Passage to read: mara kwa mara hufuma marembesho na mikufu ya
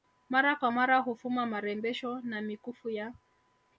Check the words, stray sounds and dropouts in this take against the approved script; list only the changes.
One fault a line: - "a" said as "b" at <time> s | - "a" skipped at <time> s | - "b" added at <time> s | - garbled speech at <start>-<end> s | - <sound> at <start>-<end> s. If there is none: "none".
none